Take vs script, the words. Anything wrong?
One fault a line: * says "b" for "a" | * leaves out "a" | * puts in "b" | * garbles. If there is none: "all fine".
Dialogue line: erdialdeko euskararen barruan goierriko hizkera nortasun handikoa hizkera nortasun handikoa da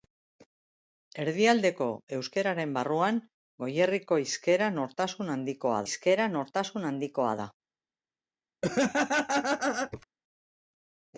all fine